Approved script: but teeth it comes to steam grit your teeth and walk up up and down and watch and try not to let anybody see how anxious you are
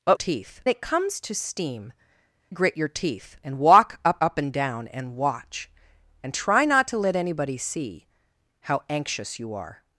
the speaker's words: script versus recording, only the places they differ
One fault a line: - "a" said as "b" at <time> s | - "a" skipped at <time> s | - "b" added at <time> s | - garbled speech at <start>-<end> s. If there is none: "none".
none